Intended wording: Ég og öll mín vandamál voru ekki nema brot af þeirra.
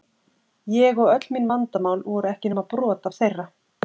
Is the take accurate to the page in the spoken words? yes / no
yes